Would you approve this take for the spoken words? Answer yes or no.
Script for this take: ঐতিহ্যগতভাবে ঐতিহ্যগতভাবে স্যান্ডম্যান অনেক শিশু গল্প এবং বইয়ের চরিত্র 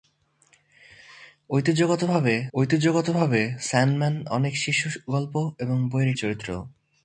yes